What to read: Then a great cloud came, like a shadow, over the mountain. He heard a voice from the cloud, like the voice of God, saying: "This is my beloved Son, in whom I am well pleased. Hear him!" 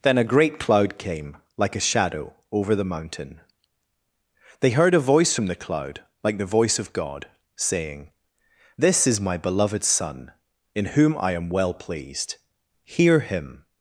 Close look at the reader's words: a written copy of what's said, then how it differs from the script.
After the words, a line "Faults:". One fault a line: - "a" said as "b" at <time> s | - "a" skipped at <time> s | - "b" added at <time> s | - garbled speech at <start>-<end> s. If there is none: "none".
Then a great cloud came, like a shadow, over the mountain. They heard a voice from the cloud, like the voice of God, saying: "This is my beloved Son, in whom I am well pleased. Hear him!"
Faults:
- "He" said as "They" at 4.6 s